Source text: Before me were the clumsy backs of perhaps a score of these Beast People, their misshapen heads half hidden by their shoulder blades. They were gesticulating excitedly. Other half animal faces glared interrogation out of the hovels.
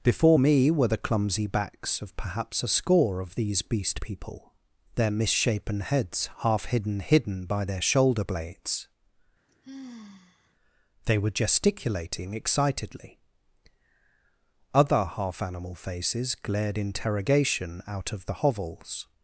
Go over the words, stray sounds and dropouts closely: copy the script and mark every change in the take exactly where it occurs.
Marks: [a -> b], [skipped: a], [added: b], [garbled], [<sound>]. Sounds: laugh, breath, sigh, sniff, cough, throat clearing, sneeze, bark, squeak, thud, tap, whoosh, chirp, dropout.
Before me were the clumsy backs of perhaps a score of these Beast People, their misshapen heads half hidden [added: hidden] by their shoulder blades. [sigh] They were gesticulating excitedly. Other half animal faces glared interrogation out of the hovels.